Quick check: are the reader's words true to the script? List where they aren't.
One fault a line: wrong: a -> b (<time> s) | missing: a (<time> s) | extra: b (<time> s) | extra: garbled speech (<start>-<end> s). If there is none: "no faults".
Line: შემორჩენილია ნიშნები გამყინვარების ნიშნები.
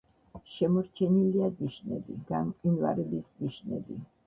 no faults